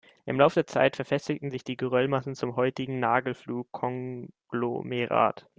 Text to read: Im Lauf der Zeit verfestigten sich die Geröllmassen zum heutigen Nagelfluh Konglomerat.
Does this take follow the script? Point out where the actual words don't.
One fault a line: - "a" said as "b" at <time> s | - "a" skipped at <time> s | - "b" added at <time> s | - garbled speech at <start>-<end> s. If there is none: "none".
none